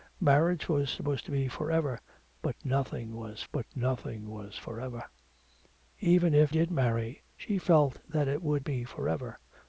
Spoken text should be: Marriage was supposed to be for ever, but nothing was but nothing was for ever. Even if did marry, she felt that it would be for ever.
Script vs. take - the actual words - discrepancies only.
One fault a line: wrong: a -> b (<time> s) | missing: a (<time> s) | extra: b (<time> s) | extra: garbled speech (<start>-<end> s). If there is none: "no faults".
no faults